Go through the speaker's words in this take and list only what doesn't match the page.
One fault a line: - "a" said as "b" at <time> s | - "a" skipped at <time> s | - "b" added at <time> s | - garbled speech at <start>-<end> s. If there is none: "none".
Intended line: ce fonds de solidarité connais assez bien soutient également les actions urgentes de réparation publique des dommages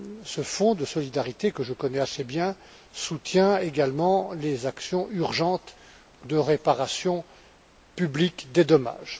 - "que je" added at 1.5 s